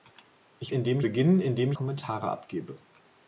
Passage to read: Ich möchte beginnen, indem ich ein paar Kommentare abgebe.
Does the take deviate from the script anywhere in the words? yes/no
yes